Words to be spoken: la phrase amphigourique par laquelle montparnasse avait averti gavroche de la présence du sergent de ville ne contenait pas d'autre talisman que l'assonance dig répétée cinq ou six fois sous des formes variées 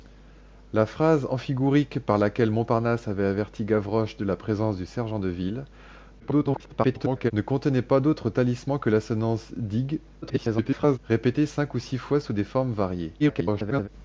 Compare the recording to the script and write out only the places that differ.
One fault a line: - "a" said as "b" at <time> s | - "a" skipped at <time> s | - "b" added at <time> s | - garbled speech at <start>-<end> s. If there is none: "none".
- garbled speech at 6.2-7.3 s
- garbled speech at 10.2-11.0 s
- garbled speech at 13.2-13.9 s